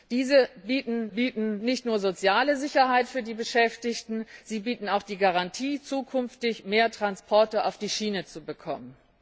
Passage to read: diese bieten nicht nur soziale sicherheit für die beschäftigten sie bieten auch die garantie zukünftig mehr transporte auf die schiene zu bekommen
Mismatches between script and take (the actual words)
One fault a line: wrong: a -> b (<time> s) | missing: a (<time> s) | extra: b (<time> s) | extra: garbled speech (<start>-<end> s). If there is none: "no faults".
extra: bieten (1.1 s)